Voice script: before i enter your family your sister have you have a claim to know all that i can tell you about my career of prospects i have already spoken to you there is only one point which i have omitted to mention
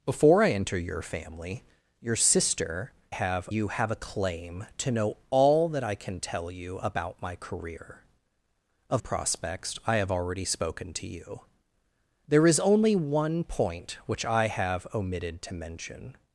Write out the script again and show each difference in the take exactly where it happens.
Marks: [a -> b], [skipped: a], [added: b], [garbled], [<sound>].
before i enter your family your sister have you have a claim to know all that i can tell you about my career of prospects i have already spoken to you there is only one point which i have omitted to mention